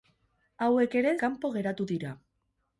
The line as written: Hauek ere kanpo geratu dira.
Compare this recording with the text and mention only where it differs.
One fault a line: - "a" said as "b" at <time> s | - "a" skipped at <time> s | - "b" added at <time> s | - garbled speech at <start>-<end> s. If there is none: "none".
none